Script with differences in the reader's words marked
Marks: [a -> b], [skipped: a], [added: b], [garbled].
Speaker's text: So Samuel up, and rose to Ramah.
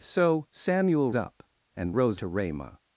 So Samuel up, and rose to Ramah.